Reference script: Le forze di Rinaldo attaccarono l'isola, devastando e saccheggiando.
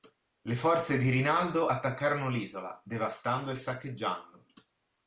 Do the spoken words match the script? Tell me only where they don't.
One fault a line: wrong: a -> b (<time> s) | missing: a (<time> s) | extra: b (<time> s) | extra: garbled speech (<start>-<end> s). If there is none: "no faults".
no faults